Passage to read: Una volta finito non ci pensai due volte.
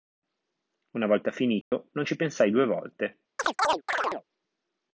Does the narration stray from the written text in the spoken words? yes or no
no